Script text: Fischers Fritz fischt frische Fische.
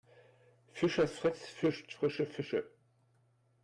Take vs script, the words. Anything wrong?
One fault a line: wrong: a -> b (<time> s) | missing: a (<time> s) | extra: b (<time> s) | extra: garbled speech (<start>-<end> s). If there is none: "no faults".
no faults